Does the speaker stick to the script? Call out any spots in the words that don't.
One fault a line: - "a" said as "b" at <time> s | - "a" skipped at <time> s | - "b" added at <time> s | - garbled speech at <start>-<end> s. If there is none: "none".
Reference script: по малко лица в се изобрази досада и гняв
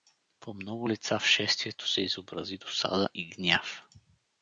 - "малко" said as "много" at 0.5 s
- "шествието" added at 1.3 s